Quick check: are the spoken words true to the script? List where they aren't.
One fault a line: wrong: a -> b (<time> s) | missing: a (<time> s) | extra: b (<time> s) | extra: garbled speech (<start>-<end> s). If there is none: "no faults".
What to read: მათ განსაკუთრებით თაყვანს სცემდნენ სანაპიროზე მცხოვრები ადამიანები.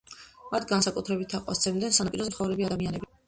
no faults